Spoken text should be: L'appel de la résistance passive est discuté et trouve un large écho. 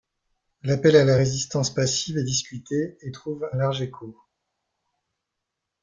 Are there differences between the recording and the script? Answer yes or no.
yes